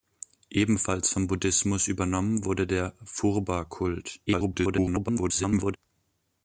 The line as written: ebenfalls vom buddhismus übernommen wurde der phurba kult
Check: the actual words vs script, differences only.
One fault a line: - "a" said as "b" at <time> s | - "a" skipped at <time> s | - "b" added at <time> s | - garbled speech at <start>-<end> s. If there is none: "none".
- garbled speech at 4.3-5.8 s